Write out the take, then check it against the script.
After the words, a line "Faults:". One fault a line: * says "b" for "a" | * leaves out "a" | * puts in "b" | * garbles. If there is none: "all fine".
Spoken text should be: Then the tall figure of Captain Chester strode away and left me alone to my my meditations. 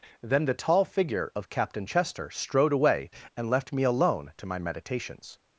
Then the tall figure of Captain Chester strode away and left me alone to my meditations.
Faults:
* leaves out "my"